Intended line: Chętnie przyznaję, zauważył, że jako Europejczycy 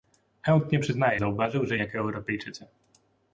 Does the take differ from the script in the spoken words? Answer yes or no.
no